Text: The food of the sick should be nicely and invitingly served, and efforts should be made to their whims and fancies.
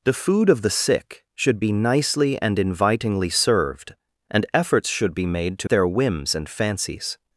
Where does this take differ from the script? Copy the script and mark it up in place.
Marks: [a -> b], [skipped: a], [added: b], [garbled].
The food of the sick should be nicely and invitingly served, and efforts should be made to their whims and fancies.